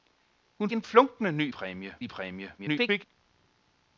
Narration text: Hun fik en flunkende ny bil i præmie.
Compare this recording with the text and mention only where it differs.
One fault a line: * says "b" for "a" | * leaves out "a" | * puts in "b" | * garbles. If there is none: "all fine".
* leaves out "fik"
* says "præmie" for "bil"
* garbles